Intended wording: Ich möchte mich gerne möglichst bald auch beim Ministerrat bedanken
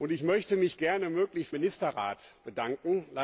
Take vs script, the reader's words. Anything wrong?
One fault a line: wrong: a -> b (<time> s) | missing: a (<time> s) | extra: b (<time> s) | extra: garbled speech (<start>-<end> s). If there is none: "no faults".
missing: bald auch beim (1.6 s)